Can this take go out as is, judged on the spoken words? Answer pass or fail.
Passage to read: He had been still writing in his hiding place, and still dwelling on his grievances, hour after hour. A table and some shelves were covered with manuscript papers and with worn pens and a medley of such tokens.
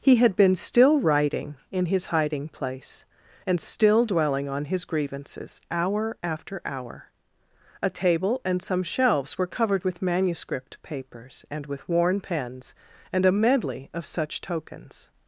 pass